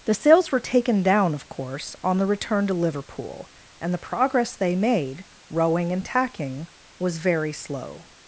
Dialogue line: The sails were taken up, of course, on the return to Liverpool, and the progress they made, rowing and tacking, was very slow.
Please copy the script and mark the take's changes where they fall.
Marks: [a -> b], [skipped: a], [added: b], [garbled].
The sails were taken [up, -> down] of course, on the return to Liverpool, and the progress they made, rowing and tacking, was very slow.